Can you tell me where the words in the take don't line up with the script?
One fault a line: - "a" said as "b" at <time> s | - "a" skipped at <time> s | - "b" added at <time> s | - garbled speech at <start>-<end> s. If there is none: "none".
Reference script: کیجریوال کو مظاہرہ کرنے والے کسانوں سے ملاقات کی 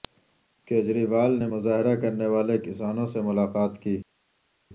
- "کو" said as "نے" at 1.4 s